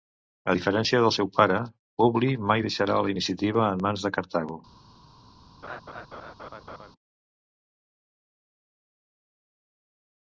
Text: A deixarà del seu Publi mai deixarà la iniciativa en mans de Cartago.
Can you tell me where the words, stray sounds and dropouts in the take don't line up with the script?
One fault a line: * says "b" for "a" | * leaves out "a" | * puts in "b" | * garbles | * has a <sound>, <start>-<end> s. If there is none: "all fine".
* says "diferència" for "deixarà"
* puts in "pare"
* has a laugh, 5.6-6.9 s